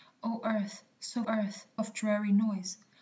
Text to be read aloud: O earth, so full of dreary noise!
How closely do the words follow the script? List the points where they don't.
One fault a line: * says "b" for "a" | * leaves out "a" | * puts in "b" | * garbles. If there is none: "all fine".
* says "earth" for "full"